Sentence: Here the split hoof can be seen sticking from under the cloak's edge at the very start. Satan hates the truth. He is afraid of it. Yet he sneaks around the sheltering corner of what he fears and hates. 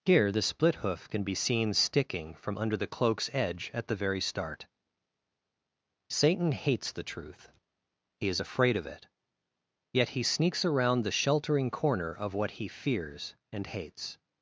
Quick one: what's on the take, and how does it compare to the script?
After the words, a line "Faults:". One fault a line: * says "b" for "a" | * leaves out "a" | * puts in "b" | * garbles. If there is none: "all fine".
Here the split hoof can be seen sticking from under the cloak's edge at the very start. Satan hates the truth. He is afraid of it. Yet he sneaks around the sheltering corner of what he fears and hates.
Faults:
all fine